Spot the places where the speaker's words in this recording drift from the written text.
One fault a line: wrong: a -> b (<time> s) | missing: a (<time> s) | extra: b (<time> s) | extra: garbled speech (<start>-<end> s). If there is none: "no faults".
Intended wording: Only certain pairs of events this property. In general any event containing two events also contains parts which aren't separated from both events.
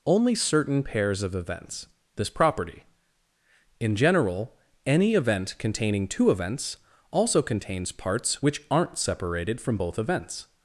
no faults